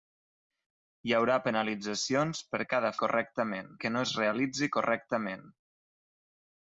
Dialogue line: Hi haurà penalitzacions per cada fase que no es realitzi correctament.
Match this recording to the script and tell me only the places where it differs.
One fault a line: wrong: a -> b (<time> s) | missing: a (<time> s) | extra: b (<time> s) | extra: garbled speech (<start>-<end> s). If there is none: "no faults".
wrong: fase -> correctament (3.0 s)